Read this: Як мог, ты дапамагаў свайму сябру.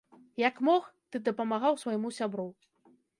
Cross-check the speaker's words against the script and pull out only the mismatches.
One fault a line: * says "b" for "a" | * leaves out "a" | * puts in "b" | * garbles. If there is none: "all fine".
all fine